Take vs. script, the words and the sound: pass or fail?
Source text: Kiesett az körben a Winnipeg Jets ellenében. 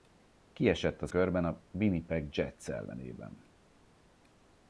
pass